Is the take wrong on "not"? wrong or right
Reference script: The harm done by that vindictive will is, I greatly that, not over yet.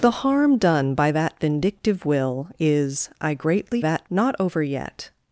right